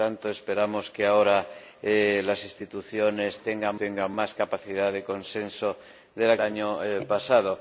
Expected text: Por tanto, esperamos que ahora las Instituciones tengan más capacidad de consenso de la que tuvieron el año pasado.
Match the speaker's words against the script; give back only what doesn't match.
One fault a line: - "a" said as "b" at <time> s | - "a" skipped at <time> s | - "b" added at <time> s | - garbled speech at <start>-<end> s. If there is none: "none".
- "tengan" added at 3.7 s
- "que tuvieron el" skipped at 6.4 s